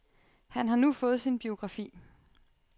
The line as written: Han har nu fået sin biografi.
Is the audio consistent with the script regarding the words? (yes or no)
yes